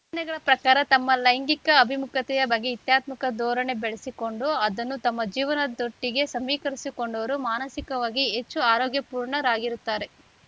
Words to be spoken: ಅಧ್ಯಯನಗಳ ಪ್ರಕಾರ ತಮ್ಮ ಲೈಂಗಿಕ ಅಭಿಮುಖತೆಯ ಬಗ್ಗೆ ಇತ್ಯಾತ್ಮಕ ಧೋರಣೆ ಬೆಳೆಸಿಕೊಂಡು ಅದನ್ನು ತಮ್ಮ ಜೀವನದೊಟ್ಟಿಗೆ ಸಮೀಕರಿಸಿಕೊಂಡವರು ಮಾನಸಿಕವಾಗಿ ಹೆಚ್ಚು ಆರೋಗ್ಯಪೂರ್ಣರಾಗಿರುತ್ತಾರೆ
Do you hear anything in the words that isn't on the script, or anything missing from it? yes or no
no